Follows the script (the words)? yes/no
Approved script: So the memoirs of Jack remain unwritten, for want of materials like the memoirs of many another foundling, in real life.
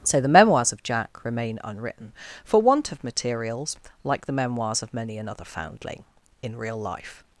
yes